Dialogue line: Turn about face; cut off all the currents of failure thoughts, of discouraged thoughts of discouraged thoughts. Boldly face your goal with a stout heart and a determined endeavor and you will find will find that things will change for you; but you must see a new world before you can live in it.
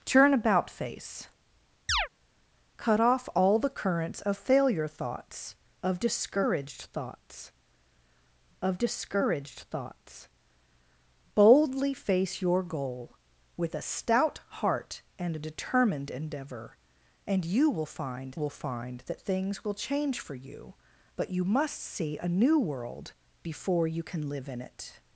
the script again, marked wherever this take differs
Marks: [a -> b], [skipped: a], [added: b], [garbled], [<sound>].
Turn about face; [chirp] cut off all the currents of failure thoughts, of discouraged thoughts of discouraged thoughts. Boldly face your goal with a stout heart and a determined endeavor and you will find will find that things will change for you; but you must see a new world before you can live in it.